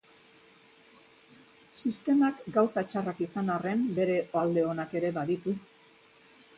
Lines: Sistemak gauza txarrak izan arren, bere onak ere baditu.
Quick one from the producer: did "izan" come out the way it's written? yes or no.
yes